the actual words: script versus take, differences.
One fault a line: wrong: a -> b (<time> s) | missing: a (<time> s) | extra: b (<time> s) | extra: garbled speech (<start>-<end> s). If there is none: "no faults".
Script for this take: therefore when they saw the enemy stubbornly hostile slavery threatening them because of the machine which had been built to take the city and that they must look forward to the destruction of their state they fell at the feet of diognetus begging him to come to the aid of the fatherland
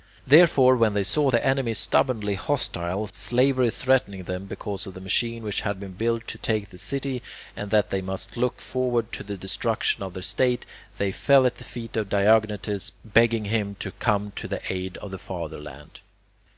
no faults